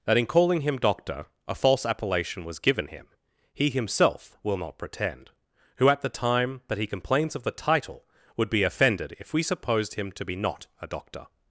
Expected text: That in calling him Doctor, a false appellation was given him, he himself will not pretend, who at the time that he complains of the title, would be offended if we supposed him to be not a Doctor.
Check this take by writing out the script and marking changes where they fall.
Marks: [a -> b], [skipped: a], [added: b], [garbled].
That in calling him Doctor, a false appellation was given him, he himself will not pretend, who at the time that he complains of the title, would be offended if we supposed him to be not a Doctor.